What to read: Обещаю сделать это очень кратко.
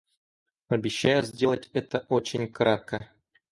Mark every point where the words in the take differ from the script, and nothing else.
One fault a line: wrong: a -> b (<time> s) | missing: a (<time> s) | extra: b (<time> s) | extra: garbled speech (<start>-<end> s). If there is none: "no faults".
no faults